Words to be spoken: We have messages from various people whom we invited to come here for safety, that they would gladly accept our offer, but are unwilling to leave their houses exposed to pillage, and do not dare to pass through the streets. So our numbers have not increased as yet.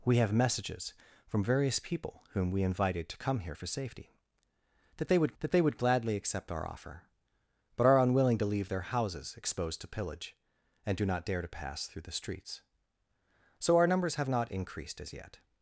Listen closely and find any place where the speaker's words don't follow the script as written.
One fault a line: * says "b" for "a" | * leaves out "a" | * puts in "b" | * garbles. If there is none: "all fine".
* puts in "that they would"